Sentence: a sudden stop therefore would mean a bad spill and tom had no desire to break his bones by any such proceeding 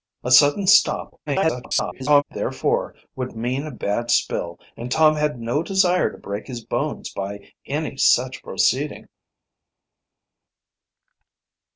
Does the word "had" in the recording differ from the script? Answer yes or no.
no